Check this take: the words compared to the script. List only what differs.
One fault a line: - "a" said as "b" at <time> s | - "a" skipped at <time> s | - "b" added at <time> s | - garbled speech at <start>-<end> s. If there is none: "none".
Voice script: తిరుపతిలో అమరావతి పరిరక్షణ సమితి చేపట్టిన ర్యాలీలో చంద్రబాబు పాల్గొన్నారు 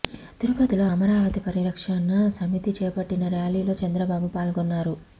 none